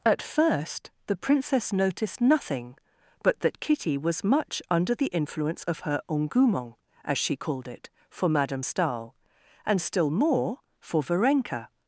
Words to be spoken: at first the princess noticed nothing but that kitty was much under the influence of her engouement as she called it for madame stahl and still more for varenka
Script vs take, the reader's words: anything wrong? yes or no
no